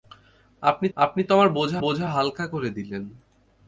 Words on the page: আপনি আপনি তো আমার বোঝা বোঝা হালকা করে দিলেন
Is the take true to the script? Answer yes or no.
yes